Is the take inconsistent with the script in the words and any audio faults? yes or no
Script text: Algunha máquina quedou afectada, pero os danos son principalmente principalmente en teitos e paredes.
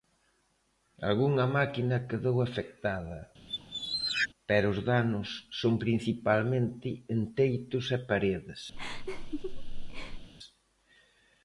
yes